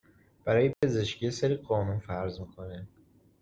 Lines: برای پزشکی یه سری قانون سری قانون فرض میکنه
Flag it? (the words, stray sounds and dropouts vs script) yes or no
yes